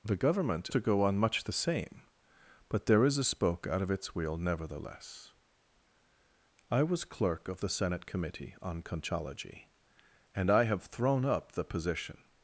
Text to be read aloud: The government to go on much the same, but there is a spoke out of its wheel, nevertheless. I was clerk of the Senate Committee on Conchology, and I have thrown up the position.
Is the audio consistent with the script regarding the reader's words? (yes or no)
yes